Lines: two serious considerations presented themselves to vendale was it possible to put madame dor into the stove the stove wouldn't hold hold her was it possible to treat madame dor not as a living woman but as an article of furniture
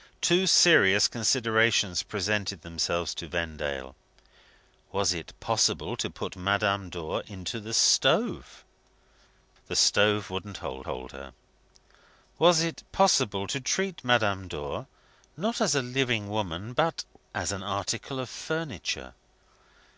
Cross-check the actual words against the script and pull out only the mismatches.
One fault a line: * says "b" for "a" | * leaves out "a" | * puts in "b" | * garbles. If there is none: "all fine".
all fine